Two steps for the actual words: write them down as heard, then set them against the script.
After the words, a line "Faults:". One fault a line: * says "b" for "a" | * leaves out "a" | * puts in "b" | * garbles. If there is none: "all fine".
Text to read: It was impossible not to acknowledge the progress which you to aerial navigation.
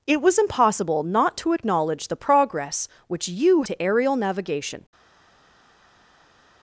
It was impossible not to acknowledge the progress which you to aerial navigation.
Faults:
all fine